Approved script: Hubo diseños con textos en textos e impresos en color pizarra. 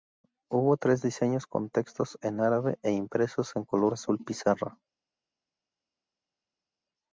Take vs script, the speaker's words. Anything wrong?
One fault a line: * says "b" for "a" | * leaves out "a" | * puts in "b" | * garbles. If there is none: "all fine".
* puts in "tres"
* says "árabe" for "textos"
* puts in "azul"